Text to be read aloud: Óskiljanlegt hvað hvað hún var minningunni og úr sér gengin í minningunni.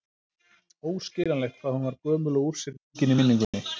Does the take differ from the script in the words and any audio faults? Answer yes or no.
yes